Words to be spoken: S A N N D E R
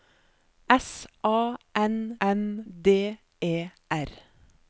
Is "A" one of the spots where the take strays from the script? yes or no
no